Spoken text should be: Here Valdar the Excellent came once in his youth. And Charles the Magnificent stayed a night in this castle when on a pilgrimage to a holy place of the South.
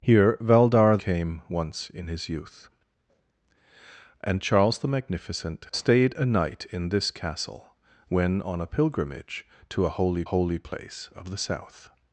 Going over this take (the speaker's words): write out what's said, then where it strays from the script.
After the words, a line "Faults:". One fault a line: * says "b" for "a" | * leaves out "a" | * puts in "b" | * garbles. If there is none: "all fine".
Here Valdar came once in his youth. And Charles the Magnificent stayed a night in this castle when on a pilgrimage to a holy holy place of the South.
Faults:
* leaves out "the Excellent"
* puts in "holy"